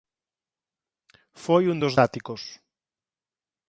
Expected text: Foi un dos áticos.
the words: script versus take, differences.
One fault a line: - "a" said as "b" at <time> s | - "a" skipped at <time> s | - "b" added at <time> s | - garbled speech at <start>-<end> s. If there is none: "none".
none